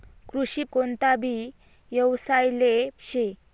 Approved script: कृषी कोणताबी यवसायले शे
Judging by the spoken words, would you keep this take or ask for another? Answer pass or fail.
pass